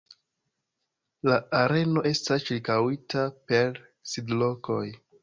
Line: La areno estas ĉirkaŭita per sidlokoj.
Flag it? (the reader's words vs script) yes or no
no